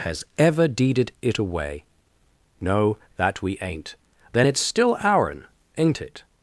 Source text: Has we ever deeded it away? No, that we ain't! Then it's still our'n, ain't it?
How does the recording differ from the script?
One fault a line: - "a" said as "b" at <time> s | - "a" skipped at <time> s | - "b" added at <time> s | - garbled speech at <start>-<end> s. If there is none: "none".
- "we" skipped at 0.2 s